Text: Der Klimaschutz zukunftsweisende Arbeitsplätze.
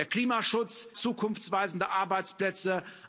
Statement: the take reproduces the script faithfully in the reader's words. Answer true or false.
true